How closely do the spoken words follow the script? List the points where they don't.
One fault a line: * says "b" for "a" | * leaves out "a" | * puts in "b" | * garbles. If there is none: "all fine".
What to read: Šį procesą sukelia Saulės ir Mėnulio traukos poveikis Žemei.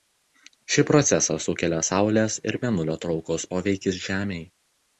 all fine